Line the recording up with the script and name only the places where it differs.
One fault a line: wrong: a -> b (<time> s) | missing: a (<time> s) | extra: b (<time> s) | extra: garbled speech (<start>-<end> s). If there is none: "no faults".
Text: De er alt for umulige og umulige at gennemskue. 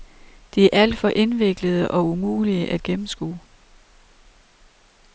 wrong: umulige -> indviklede (1.2 s)